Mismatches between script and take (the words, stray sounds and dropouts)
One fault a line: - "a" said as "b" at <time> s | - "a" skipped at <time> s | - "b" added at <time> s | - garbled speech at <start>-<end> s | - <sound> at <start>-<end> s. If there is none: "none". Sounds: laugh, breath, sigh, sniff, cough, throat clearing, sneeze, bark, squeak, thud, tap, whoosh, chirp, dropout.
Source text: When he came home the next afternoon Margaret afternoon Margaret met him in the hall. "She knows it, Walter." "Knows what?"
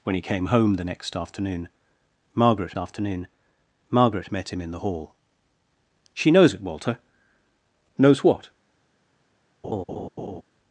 - laugh at 9.6-10.4 s